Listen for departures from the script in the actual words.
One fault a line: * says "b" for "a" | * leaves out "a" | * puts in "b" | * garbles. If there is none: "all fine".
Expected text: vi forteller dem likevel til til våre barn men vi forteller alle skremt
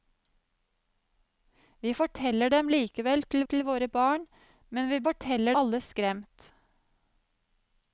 all fine